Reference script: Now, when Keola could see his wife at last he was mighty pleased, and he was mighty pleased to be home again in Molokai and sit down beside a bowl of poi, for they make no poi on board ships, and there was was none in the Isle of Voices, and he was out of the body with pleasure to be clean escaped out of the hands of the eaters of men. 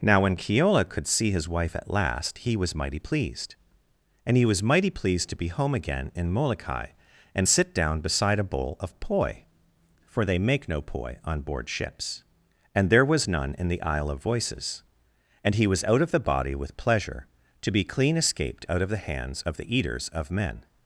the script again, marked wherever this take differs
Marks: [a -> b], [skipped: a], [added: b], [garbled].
Now, when Keola could see his wife at last he was mighty pleased, and he was mighty pleased to be home again in Molokai and sit down beside a bowl of poi, for they make no poi on board ships, and there was [skipped: was] none in the Isle of Voices, and he was out of the body with pleasure to be clean escaped out of the hands of the eaters of men.